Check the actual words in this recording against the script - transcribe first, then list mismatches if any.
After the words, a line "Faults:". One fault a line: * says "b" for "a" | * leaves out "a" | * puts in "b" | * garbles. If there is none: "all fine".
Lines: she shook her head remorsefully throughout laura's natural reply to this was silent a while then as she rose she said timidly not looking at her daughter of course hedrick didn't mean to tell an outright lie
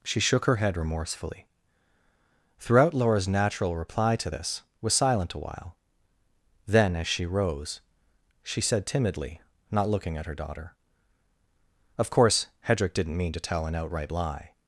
she shook her head remorsefully throughout laura's natural reply to this was silent a while then as she rose she said timidly not looking at her daughter of course hedrick didn't mean to tell an outright lie
Faults:
all fine